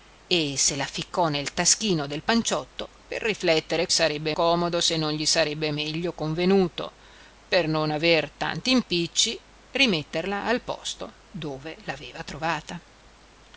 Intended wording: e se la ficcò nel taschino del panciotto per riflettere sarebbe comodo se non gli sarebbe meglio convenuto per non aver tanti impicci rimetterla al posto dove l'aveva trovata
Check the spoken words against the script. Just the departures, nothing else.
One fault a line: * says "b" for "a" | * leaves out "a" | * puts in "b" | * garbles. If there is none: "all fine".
all fine